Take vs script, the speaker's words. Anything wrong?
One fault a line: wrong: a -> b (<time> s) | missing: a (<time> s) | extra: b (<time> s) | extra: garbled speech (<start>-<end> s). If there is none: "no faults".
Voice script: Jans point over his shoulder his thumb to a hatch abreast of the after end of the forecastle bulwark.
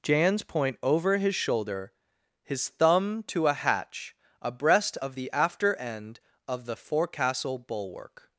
no faults